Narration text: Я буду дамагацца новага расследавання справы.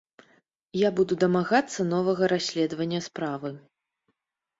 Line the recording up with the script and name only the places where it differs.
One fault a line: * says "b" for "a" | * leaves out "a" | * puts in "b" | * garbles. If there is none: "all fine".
all fine